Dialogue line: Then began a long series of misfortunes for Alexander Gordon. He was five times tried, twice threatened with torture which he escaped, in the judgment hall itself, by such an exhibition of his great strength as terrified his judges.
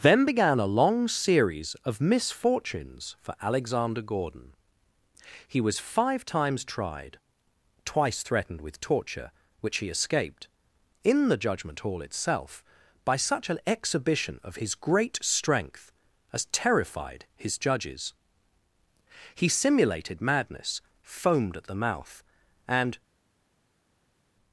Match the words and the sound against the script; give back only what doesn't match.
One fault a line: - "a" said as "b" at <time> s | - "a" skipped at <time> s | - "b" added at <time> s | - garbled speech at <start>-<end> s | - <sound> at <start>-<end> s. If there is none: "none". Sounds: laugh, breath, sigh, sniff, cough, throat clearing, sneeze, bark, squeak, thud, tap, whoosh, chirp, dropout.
- "He simulated madness foamed at the mouth and" added at 19.4 s